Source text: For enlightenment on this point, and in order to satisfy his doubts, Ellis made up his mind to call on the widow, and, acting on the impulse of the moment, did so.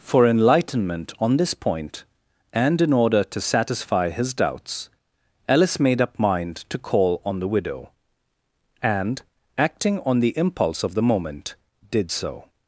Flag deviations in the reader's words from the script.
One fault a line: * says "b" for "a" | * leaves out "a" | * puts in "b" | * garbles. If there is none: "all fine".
* leaves out "his"